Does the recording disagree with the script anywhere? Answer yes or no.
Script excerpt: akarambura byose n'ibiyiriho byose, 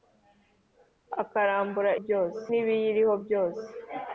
no